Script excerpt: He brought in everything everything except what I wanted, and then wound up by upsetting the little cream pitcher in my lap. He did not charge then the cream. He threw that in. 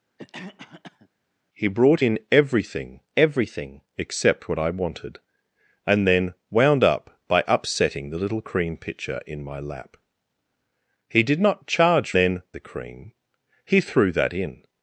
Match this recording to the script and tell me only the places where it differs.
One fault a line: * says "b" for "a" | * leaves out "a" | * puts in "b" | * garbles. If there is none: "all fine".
all fine